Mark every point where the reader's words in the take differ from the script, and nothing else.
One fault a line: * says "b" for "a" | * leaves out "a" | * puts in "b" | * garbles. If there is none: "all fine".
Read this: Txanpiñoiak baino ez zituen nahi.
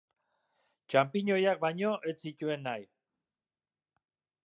all fine